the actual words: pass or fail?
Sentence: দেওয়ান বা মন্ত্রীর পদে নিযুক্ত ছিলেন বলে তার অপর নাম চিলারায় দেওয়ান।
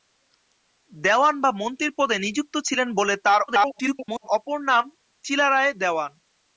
fail